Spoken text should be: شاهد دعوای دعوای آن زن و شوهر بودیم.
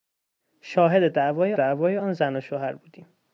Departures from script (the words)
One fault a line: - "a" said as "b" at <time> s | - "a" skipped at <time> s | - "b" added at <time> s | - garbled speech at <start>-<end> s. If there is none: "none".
none